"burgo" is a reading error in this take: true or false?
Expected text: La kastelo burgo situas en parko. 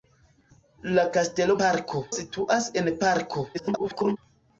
true